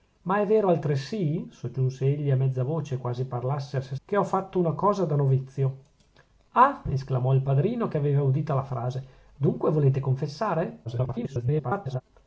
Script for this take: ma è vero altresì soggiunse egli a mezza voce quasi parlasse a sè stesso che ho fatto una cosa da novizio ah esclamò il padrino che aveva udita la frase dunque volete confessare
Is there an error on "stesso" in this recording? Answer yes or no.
yes